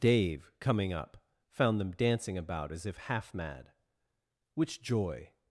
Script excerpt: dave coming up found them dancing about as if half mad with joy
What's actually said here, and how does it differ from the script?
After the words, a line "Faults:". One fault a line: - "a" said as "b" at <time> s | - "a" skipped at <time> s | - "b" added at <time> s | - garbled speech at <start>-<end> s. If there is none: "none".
dave coming up found them dancing about as if half mad which joy
Faults:
- "with" said as "which" at 4.5 s